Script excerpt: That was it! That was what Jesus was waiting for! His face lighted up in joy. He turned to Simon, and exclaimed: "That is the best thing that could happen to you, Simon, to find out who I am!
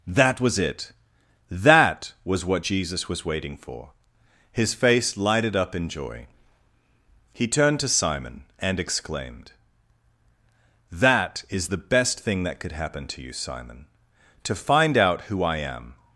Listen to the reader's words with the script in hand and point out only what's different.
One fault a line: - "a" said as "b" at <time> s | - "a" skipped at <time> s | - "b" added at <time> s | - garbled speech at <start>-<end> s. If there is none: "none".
none